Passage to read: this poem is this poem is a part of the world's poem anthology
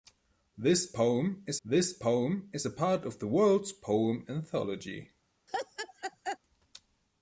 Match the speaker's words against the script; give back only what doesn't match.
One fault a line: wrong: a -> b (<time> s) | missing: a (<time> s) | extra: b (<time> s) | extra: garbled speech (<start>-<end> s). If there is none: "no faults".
no faults